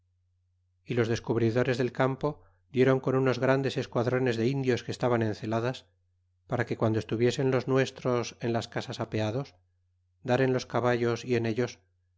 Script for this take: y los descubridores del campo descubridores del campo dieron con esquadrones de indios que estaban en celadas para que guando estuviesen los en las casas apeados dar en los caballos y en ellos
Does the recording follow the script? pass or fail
fail